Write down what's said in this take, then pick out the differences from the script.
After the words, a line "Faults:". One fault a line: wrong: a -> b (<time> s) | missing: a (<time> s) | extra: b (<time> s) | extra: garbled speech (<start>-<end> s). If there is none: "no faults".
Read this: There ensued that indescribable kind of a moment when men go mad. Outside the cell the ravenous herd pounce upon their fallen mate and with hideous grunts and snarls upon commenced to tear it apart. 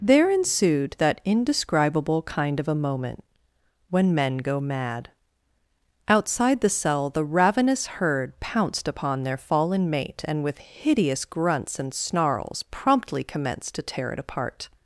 There ensued that indescribable kind of a moment when men go mad. Outside the cell the ravenous herd pounced upon their fallen mate and with hideous grunts and snarls promptly commenced to tear it apart.
Faults:
wrong: pounce -> pounced (8.4 s)
wrong: upon -> promptly (12.7 s)